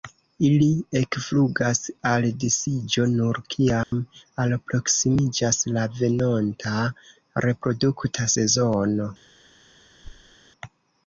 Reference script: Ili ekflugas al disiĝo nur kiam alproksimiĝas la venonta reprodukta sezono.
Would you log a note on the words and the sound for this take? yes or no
yes